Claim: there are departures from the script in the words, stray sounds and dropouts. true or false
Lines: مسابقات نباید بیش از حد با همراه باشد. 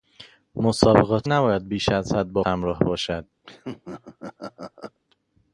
true